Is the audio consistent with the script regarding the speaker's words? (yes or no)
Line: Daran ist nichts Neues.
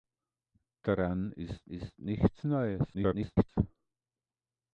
no